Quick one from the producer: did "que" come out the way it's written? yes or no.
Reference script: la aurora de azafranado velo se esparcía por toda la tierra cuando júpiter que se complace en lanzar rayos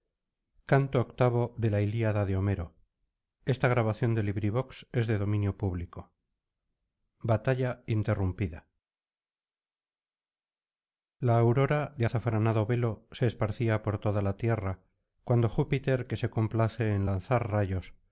yes